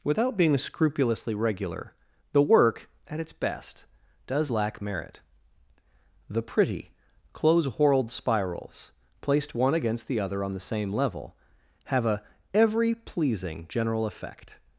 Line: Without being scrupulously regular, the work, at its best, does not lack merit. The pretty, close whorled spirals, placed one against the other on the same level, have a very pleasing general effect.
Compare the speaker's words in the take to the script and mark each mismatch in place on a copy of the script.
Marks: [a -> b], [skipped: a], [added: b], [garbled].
Without being scrupulously regular, the work, at its best, does [skipped: not] lack merit. The pretty, close whorled spirals, placed one against the other on the same level, have a [very -> every] pleasing general effect.